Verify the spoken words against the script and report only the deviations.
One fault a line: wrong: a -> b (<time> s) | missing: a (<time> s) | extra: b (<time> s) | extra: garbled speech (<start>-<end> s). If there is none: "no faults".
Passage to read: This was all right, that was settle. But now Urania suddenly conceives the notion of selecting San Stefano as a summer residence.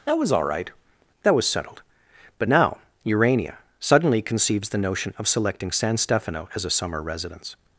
wrong: This -> That (0.1 s)
wrong: settle -> settled (1.5 s)